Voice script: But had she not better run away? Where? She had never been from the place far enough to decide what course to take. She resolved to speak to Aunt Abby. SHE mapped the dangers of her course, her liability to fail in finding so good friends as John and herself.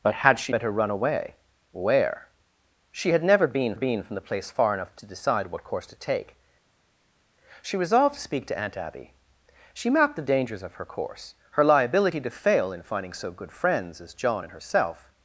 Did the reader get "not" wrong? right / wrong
wrong